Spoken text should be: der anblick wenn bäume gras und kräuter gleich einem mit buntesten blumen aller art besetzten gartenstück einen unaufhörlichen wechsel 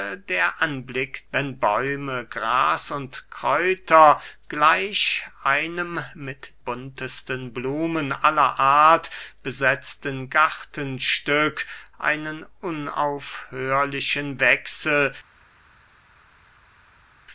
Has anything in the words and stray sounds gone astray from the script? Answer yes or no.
no